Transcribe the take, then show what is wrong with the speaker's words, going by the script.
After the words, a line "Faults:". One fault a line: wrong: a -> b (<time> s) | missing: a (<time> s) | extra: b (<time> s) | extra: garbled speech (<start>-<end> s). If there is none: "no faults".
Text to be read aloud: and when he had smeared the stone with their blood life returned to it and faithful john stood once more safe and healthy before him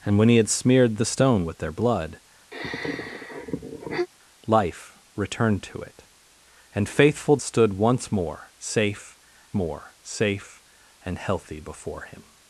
and when he had smeared the stone with their blood life returned to it and faithful stood once more safe more safe and healthy before him
Faults:
missing: john (7.4 s)
extra: more safe (9.5 s)